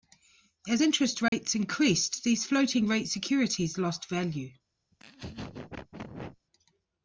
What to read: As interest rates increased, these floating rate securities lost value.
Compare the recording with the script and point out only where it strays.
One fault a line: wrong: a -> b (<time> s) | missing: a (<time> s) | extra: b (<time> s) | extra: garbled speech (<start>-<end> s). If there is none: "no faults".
no faults